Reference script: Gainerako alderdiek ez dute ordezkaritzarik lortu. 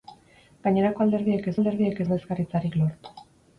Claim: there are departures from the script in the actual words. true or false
true